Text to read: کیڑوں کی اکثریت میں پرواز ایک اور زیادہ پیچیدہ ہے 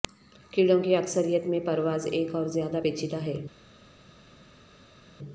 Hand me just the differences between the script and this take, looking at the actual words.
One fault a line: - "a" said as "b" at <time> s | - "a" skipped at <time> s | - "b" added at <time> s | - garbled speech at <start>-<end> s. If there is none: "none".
none